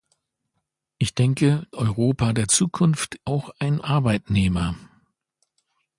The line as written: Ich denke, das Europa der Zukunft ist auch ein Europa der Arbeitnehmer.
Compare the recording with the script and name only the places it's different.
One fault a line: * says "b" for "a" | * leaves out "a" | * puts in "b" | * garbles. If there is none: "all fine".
* leaves out "das"
* leaves out "ist"
* leaves out "Europa der"